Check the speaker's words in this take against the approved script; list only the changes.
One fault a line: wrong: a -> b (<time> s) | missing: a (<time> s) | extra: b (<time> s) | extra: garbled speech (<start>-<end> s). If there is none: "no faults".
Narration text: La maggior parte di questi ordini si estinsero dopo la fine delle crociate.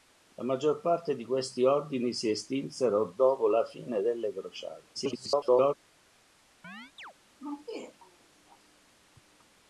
extra: garbled speech (4.9-5.7 s)